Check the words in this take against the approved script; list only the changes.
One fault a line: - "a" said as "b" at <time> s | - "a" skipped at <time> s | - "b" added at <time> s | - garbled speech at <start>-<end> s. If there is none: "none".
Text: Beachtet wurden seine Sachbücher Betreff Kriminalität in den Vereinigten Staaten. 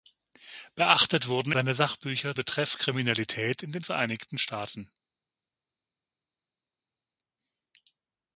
none